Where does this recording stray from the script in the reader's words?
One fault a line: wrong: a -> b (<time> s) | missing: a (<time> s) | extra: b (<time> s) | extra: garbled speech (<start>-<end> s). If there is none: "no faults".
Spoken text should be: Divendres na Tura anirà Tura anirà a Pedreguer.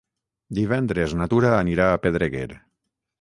missing: Tura anirà (1.9 s)